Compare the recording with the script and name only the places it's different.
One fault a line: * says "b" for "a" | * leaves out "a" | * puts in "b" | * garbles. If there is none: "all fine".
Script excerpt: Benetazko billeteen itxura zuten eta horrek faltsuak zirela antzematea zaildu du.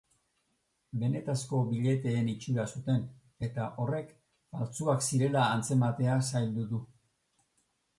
all fine